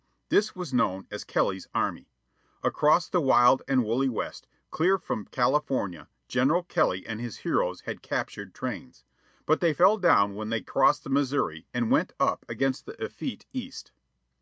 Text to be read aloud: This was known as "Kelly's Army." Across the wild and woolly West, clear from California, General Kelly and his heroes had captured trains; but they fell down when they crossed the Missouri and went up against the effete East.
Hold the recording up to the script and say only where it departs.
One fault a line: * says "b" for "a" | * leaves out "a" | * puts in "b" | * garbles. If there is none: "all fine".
all fine